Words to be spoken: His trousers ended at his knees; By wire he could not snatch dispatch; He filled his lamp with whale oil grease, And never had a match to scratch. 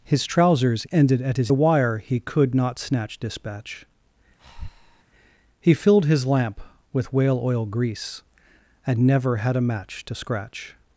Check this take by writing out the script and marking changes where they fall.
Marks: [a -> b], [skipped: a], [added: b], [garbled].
His trousers ended at his [skipped: knees; By] wire he could not snatch dispatch; He filled his lamp with whale oil grease, And never had a match to scratch.